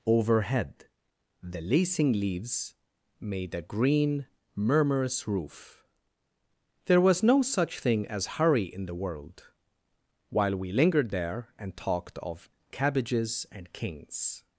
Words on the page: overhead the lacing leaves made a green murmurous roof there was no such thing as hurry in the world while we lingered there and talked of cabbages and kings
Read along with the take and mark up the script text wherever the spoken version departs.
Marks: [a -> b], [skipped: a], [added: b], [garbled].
overhead the lacing leaves made a green murmurous roof there was no such thing as hurry in the world while we lingered there and talked of cabbages and kings